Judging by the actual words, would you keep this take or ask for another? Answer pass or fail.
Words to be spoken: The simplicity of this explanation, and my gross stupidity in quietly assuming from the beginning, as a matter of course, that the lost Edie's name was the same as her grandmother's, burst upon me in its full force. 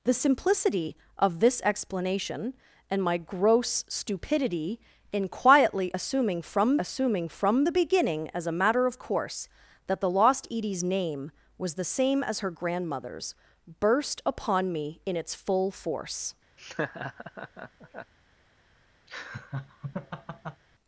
fail